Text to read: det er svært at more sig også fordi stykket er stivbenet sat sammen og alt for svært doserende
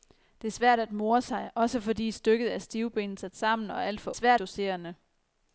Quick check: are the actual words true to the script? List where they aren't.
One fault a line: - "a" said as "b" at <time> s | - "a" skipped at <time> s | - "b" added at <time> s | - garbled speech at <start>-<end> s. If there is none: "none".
none